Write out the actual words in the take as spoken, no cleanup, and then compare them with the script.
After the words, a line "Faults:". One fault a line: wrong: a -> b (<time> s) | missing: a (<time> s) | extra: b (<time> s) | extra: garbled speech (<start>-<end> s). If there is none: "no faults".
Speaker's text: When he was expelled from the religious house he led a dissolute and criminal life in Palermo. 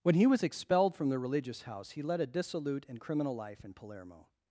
When he was expelled from the religious house he led a dissolute and criminal life in Palermo.
Faults:
no faults